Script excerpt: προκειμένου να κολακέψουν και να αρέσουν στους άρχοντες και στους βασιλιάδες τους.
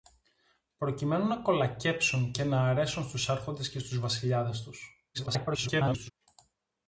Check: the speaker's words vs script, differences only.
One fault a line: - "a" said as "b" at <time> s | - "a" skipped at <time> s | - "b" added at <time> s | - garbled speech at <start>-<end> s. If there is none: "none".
- garbled speech at 5.1-6.1 s